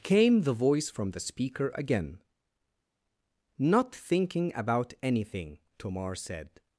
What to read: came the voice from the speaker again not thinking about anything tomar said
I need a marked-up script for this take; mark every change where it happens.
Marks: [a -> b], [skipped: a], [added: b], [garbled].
came the voice from the speaker again not thinking about anything tomar said